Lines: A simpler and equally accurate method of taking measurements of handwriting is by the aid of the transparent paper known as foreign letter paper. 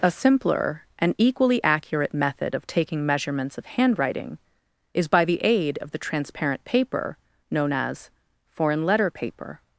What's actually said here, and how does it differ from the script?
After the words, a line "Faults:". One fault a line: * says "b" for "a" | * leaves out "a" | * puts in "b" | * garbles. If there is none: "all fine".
A simpler and equally accurate method of taking measurements of handwriting is by the aid of the transparent paper known as foreign letter paper.
Faults:
all fine